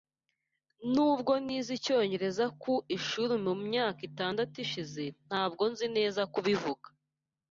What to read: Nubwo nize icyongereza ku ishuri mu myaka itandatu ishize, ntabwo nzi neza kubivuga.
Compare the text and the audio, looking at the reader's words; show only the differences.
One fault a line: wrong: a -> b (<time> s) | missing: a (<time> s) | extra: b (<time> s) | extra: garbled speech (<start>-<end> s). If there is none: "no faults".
no faults